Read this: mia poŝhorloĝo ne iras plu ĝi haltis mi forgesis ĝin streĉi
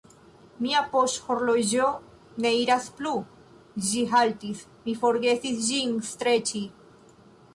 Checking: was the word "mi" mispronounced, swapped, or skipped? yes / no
no